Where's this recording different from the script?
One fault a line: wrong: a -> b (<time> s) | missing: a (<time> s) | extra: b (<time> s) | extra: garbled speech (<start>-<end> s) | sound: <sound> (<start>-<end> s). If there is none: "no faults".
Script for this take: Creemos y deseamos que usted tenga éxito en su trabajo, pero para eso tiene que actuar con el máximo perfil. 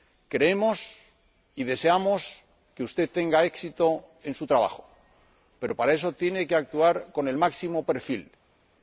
no faults